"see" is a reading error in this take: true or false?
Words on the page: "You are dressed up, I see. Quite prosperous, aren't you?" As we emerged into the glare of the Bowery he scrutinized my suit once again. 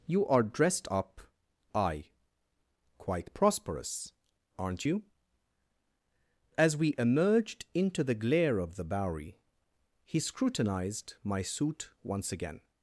true